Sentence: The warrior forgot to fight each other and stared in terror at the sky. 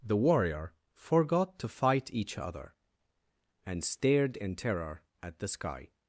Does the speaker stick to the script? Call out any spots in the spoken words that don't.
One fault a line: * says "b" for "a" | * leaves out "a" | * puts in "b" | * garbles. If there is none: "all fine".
all fine